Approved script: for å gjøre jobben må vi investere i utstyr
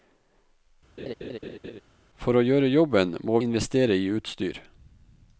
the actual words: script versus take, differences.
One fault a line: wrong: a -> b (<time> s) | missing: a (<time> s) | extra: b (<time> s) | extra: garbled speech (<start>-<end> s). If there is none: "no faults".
missing: vi (3.4 s)